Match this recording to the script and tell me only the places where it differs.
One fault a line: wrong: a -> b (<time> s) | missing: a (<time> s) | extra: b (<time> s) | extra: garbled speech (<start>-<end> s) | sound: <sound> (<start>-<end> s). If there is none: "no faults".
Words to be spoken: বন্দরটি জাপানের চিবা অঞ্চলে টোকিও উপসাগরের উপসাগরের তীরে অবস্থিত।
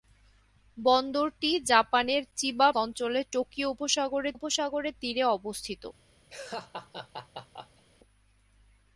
sound: laugh (6.3-7.8 s)